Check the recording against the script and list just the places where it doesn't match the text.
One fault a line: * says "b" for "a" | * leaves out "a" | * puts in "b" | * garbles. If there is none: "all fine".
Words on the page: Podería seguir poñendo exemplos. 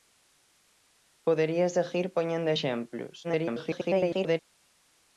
* garbles